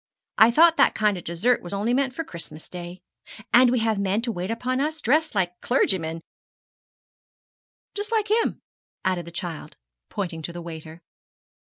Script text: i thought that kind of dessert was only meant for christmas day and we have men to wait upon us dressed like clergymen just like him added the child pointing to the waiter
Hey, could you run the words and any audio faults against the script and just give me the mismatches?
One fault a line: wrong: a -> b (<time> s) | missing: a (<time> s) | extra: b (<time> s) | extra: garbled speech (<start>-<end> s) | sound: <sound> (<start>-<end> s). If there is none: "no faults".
no faults